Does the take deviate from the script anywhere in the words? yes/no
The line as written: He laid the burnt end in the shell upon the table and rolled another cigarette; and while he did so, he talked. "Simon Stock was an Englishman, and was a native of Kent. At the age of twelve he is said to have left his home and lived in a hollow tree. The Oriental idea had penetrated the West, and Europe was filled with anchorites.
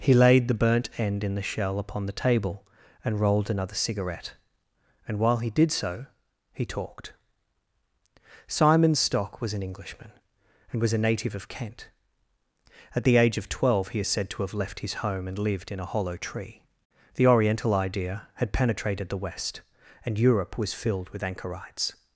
no